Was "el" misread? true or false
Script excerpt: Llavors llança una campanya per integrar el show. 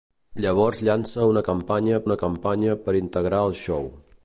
false